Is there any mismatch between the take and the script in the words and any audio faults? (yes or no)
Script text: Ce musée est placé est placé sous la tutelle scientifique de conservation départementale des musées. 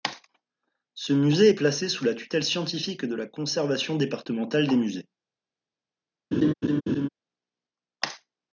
yes